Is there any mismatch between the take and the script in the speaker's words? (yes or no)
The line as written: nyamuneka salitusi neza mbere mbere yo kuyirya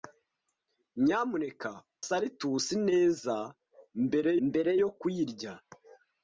no